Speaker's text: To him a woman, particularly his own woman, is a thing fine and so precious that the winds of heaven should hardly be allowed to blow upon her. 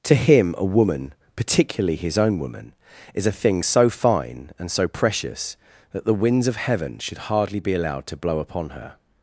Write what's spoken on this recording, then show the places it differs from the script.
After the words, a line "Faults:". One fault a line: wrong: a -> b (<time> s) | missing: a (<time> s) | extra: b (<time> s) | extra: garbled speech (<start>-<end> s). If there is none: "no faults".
To him a woman, particularly his own woman, is a thing so fine and so precious that the winds of heaven should hardly be allowed to blow upon her.
Faults:
extra: so (3.6 s)